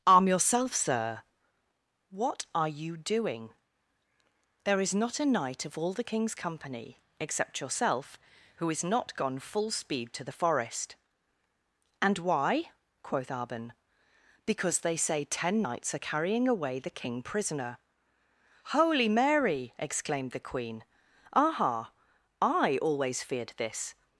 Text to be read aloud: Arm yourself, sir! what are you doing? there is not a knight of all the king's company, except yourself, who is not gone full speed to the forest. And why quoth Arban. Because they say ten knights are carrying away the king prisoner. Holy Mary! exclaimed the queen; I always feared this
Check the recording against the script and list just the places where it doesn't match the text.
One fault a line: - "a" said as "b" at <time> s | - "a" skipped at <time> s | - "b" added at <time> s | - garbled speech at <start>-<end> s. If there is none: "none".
- "aha" added at 21.3 s